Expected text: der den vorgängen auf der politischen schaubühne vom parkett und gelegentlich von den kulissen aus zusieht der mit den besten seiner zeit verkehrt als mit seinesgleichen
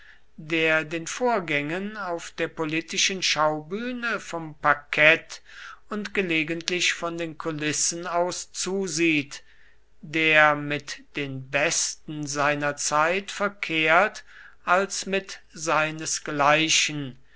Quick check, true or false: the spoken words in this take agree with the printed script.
true